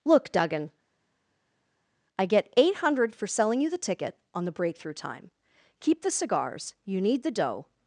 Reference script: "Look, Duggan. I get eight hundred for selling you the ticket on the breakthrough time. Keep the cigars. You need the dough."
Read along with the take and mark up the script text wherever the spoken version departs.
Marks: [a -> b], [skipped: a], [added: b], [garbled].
"Look, Duggan. I get eight hundred for selling you the ticket on the breakthrough time. Keep the cigars. You need the dough."